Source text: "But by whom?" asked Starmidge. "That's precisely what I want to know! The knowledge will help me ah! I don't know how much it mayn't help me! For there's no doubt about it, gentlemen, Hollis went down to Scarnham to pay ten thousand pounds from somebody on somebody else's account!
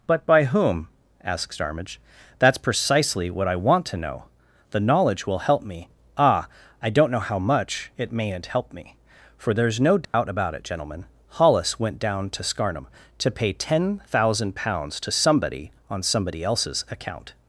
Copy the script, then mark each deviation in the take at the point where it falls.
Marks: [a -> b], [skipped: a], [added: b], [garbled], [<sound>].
"But by whom?" asked Starmidge. "That's precisely what I want to know! The knowledge will help me ah! I don't know how much it mayn't help me! For there's no doubt [dropout] about it, gentlemen, Hollis went down to Scarnham to pay ten thousand pounds [from -> to] somebody on somebody else's account!